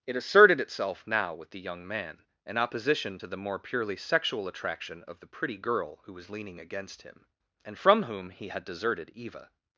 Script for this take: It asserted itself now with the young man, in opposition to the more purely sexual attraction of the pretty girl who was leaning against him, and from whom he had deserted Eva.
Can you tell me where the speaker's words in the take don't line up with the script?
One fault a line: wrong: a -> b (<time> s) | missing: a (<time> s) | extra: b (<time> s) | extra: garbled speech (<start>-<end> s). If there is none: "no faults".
no faults